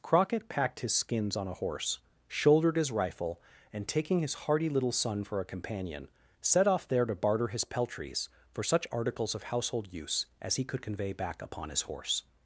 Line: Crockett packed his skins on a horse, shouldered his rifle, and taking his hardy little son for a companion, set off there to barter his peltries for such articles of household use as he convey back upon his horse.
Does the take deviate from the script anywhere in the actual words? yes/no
yes